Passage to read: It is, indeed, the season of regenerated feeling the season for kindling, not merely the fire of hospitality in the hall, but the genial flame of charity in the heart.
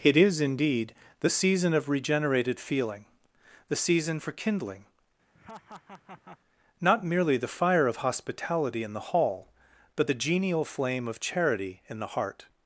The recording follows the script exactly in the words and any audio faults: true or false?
false